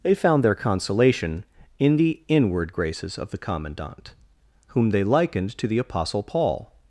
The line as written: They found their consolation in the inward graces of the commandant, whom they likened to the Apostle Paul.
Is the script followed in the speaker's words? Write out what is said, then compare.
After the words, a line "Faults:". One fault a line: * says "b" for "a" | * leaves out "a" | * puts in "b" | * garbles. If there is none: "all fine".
They found their consolation in the inward graces of the commandant, whom they likened to the Apostle Paul.
Faults:
all fine